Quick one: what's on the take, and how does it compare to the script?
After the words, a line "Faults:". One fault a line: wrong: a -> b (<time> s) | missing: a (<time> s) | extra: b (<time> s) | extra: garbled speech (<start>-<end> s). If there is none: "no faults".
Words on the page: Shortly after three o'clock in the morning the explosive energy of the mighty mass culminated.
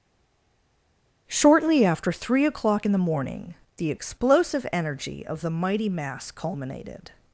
Shortly after three o'clock in the morning the explosive energy of the mighty mass culminated.
Faults:
no faults